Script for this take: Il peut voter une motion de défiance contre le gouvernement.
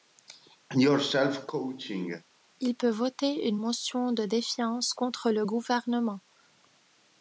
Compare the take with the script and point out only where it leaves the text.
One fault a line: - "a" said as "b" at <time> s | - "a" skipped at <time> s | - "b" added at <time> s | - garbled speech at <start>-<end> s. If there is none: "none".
none